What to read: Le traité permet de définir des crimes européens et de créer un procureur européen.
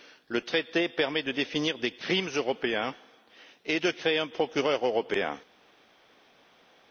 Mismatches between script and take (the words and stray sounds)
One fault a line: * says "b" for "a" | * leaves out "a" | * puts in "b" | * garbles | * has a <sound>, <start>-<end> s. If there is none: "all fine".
all fine